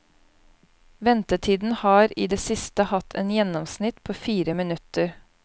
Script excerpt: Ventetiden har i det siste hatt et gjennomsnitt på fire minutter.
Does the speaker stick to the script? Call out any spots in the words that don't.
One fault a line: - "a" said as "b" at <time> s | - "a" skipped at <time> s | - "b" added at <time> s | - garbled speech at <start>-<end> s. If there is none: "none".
none